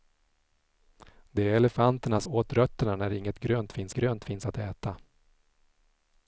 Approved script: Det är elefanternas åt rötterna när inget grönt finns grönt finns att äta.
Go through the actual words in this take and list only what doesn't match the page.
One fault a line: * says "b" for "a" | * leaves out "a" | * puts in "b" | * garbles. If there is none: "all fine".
all fine